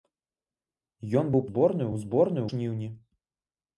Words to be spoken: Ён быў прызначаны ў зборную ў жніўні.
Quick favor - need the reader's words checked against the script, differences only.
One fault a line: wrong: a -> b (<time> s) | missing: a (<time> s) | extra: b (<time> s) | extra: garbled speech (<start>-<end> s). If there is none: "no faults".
wrong: прызначаны -> зборную (1.5 s)
missing: ў (2.5 s)